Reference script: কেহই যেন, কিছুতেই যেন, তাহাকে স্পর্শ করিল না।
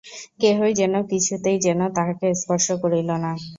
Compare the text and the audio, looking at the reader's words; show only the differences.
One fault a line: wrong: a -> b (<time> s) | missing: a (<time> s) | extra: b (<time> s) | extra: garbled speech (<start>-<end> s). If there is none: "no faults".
no faults